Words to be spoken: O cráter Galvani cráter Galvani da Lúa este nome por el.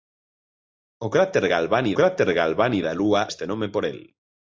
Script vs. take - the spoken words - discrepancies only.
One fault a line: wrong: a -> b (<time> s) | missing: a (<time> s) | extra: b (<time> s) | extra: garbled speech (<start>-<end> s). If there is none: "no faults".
no faults